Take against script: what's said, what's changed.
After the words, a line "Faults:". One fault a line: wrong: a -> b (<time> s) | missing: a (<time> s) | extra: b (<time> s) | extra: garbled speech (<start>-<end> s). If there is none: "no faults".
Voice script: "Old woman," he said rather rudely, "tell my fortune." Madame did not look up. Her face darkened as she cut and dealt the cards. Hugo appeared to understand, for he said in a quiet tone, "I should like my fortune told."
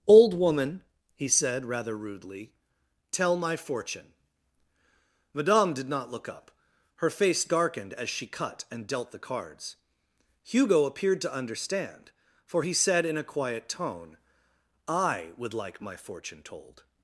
"Old woman," he said rather rudely, "tell my fortune." Madame did not look up. Her face darkened as she cut and dealt the cards. Hugo appeared to understand, for he said in a quiet tone, "I would like my fortune told."
Faults:
wrong: should -> would (15.4 s)